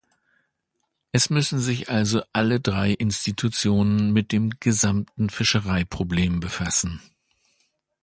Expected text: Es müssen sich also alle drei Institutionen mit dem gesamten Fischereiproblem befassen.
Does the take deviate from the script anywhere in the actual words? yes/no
no